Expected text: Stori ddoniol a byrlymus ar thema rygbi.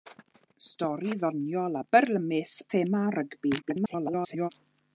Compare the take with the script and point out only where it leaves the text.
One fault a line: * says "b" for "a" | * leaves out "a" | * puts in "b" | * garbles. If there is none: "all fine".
* leaves out "ar"
* garbles